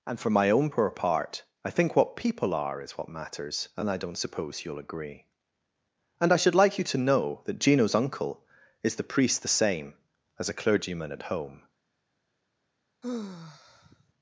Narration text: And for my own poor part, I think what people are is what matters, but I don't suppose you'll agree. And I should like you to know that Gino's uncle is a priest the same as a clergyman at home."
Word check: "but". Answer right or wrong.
wrong